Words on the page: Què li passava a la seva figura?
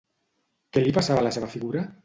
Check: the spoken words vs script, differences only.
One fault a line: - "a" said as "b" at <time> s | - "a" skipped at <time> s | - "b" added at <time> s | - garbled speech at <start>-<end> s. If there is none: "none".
none